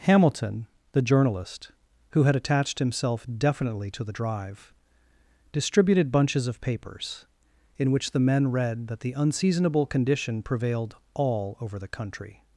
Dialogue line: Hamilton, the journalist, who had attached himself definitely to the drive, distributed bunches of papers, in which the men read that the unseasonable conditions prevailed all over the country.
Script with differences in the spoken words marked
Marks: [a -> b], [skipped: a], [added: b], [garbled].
Hamilton, the journalist, who had attached himself definitely to the drive, distributed bunches of papers, in which the men read that the unseasonable [conditions -> condition] prevailed all over the country.